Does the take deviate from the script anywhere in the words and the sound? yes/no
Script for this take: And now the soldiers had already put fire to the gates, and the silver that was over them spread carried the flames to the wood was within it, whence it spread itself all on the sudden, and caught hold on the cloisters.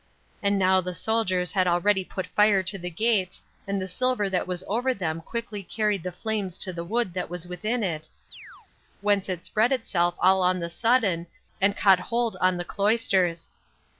yes